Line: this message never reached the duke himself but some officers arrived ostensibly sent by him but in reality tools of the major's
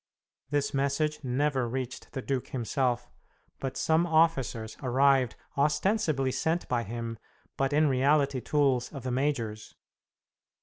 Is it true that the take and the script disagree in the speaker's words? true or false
false